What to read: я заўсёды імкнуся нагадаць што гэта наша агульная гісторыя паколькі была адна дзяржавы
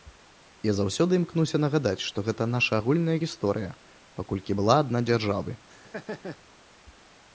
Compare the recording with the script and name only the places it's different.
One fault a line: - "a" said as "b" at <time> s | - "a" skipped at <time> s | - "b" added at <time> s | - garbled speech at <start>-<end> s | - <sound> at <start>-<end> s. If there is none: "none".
- laugh at 5.7-6.4 s